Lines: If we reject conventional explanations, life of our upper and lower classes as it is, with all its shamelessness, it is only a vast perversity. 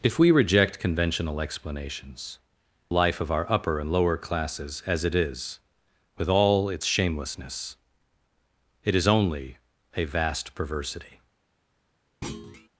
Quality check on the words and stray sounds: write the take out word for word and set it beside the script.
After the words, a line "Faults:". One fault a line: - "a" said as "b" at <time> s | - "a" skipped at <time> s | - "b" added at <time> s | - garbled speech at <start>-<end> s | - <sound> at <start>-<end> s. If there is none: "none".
If we reject conventional explanations, life of our upper and lower classes as it is, with all its shamelessness, it is only a vast perversity.
Faults:
- thud at 12.2-12.7 s